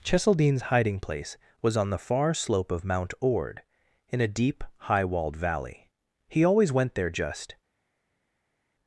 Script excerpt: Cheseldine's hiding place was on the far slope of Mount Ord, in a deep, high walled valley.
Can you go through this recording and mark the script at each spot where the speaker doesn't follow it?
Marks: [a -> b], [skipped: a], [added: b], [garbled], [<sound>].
Cheseldine's hiding place was on the far slope of Mount Ord, in a deep, high walled valley. [added: He always went there just]